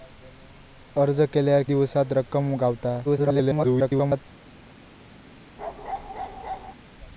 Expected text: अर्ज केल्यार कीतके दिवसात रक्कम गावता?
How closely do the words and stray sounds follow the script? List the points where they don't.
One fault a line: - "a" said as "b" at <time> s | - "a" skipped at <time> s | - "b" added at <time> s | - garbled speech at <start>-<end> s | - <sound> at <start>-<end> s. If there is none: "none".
- "कीतके" skipped at 1.6 s
- garbled speech at 3.0-4.2 s
- bark at 5.6-6.7 s